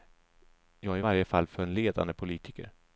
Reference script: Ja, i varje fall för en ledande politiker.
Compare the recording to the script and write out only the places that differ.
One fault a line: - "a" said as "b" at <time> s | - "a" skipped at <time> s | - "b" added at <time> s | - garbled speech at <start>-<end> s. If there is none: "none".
none